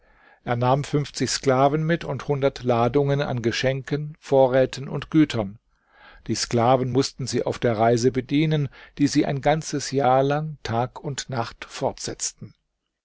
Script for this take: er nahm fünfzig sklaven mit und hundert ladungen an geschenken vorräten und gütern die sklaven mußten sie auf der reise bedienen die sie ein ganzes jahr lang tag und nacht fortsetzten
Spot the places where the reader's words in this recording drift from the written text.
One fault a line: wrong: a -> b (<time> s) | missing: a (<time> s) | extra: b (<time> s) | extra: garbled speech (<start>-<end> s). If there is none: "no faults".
no faults